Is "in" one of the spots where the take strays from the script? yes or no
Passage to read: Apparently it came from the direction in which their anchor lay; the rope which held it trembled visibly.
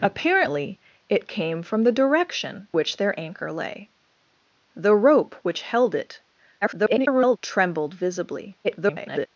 yes